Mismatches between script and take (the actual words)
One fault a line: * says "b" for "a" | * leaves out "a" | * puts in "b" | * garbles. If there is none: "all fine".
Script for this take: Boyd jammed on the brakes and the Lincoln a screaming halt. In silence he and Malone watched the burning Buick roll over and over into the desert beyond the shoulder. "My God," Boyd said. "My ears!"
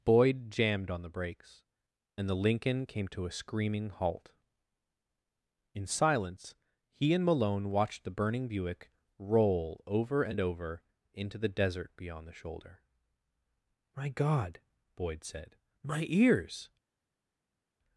* puts in "came to"